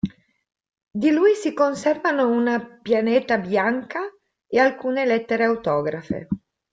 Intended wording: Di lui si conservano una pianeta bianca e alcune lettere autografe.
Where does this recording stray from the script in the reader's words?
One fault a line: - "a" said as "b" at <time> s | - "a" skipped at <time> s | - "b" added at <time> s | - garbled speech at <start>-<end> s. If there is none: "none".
none